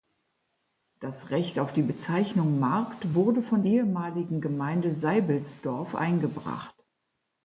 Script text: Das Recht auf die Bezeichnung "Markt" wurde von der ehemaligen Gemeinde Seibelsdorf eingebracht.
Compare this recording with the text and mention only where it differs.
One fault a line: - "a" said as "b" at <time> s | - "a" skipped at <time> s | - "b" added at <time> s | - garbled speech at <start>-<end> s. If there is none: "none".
- "der" skipped at 3.6 s